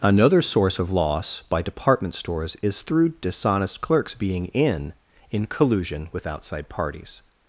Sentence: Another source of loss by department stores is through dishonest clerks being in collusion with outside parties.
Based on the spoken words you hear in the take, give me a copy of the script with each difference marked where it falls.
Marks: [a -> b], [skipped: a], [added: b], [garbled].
Another source of loss by department stores is through dishonest clerks being in [added: in] collusion with outside parties.